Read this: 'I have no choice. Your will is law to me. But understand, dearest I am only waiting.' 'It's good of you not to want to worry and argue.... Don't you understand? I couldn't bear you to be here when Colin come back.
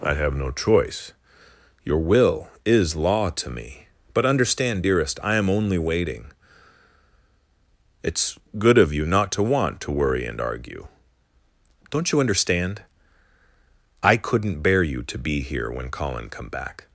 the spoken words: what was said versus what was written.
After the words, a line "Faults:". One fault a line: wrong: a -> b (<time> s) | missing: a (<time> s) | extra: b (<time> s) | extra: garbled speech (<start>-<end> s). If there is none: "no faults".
'I have no choice. Your will is law to me. But understand, dearest I am only waiting.' 'It's good of you not to want to worry and argue.... Don't you understand? I couldn't bear you to be here when Colin come back.
Faults:
no faults